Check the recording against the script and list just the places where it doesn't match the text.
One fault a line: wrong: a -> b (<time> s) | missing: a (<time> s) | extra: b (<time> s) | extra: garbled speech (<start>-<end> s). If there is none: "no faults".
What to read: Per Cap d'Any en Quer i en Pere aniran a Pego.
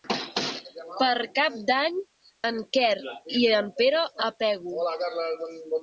missing: aniran (4.1 s)